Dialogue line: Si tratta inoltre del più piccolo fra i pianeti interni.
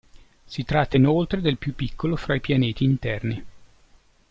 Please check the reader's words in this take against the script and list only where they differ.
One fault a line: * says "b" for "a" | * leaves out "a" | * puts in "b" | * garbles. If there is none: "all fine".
all fine